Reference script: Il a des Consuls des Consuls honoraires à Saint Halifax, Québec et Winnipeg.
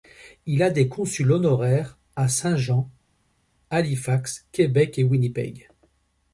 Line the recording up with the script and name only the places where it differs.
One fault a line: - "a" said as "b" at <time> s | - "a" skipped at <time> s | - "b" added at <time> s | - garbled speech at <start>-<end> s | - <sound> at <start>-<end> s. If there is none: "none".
- "des Consuls" skipped at 1.3 s
- "Jean" added at 2.5 s